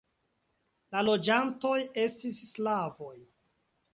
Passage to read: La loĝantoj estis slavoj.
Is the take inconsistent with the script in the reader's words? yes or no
no